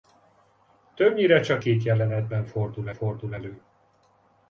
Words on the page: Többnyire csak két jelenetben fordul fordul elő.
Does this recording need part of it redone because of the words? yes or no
no